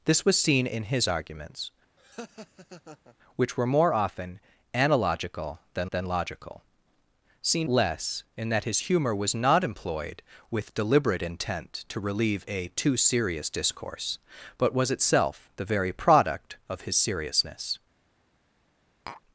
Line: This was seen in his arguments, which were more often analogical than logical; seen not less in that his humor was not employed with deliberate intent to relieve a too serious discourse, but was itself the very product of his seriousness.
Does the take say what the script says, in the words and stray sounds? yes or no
no